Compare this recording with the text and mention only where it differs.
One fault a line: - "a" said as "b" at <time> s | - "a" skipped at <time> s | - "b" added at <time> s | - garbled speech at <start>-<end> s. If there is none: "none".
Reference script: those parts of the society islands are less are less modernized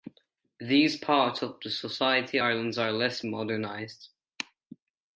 - "those" said as "these" at 0.6 s
- "are less" skipped at 3.2 s